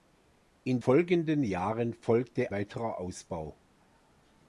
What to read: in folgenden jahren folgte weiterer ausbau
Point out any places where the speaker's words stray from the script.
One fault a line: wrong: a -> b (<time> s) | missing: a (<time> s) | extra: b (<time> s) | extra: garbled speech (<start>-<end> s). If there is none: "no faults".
no faults